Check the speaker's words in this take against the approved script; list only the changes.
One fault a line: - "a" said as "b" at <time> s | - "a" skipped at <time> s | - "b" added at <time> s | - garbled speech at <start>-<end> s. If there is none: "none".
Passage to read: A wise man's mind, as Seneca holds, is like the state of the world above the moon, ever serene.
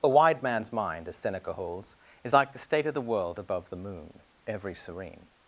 - "wise" said as "wide" at 0.1 s
- "ever" said as "every" at 4.5 s